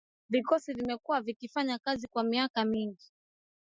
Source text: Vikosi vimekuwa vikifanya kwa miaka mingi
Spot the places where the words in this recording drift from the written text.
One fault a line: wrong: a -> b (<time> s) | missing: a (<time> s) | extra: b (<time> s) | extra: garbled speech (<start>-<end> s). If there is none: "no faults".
extra: kazi (1.8 s)